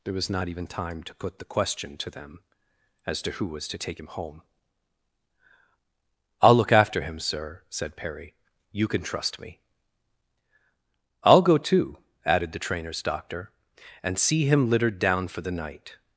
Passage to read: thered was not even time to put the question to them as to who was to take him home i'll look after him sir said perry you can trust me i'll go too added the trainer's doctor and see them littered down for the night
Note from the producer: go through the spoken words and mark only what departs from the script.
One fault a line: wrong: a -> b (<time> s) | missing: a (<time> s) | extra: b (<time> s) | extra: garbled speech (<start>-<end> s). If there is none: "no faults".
wrong: thered -> there (0.0 s)
wrong: them -> him (14.4 s)